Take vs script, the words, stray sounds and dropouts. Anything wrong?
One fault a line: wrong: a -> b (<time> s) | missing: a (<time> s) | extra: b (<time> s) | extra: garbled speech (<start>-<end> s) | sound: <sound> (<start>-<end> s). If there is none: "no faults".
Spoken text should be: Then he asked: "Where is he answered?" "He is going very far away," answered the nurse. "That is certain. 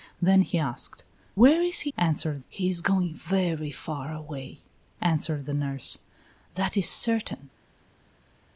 no faults